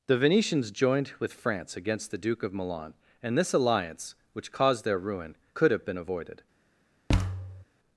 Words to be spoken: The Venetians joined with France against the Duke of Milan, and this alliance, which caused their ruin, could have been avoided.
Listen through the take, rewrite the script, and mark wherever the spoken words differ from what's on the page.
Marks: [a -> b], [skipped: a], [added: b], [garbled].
The Venetians joined with France against the Duke of Milan, and this alliance, which caused their ruin, could have been avoided.